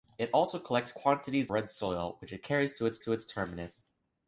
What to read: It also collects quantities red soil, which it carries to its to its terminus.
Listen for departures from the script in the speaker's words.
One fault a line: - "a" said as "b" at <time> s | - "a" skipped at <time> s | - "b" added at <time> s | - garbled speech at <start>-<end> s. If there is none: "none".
none